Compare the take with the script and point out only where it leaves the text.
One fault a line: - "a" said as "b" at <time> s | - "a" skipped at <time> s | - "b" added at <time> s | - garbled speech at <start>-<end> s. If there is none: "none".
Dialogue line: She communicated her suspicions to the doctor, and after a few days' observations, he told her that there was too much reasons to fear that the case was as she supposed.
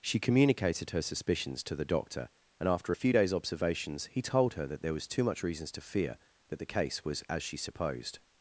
none